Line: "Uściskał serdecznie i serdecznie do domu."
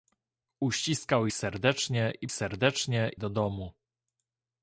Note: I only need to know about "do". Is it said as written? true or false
true